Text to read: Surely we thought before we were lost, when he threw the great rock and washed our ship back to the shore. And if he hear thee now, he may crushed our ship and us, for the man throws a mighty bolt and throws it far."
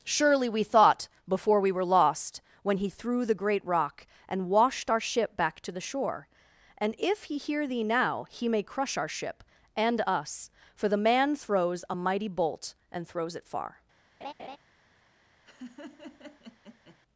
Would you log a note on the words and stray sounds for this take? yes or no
yes